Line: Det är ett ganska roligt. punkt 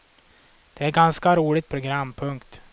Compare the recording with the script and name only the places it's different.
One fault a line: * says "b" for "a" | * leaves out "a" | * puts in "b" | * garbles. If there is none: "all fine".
* puts in "program"